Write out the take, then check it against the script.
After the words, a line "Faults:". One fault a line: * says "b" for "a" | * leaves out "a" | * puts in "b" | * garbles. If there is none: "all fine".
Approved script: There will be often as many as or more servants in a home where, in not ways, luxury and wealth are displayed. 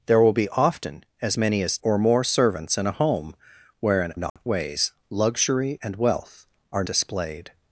There will be often as many as or more servants in a home where, in not ways, luxury and wealth are displayed.
Faults:
all fine